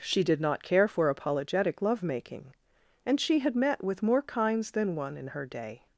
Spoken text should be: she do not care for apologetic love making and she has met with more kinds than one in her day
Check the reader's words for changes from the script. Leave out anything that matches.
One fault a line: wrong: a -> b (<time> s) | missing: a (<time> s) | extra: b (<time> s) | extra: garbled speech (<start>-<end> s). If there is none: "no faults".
wrong: do -> did (0.2 s)
wrong: has -> had (3.4 s)